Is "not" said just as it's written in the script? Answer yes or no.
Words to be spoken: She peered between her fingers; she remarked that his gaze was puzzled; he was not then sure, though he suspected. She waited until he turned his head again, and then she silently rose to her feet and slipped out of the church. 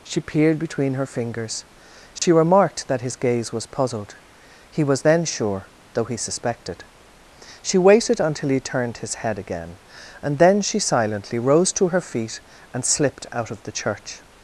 no